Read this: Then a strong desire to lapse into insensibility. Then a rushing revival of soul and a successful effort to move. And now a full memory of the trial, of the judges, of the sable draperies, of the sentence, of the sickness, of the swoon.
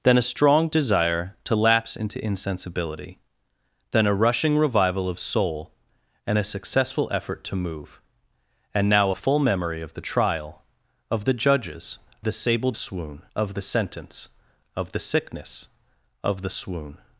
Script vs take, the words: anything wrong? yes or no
yes